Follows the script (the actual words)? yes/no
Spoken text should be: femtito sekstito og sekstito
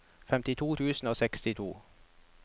no